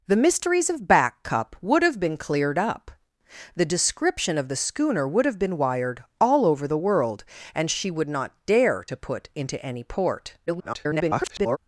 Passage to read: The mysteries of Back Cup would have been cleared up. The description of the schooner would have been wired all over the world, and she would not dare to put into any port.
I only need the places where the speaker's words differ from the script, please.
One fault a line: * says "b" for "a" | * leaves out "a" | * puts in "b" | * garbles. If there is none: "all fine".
* garbles